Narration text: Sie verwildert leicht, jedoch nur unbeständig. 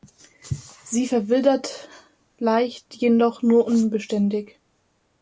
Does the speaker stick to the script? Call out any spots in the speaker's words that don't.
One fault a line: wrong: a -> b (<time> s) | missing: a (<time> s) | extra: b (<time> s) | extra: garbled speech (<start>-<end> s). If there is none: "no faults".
no faults